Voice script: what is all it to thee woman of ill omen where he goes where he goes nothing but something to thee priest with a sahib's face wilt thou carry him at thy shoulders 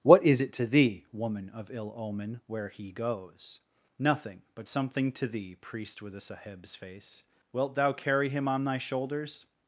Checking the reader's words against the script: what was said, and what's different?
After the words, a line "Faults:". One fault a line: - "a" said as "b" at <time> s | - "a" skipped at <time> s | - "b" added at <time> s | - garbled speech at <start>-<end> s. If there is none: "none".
what is it to thee woman of ill omen where he goes nothing but something to thee priest with a sahib's face wilt thou carry him on thy shoulders
Faults:
- "all" skipped at 0.4 s
- "where he goes" skipped at 3.6 s
- "at" said as "on" at 8.5 s